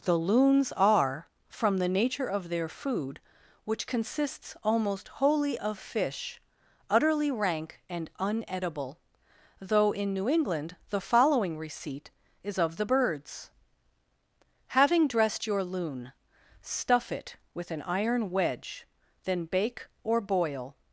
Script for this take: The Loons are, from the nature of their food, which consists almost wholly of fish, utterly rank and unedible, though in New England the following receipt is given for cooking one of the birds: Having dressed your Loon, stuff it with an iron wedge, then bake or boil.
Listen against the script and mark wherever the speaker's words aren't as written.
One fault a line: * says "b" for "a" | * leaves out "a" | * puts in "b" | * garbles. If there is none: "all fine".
* leaves out "given for cooking one"